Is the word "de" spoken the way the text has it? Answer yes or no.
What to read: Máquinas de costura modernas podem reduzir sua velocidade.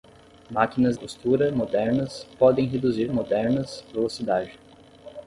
no